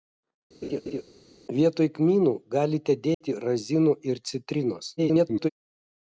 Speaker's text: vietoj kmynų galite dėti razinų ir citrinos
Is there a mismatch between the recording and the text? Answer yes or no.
yes